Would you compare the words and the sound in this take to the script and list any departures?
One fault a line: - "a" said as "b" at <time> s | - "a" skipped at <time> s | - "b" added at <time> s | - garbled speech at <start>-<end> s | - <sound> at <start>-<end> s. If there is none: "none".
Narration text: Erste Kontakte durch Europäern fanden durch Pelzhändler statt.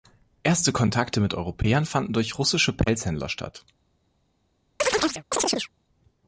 - "durch" said as "mit" at 1.2 s
- "russische" added at 2.4 s
- chirp at 4.8-5.7 s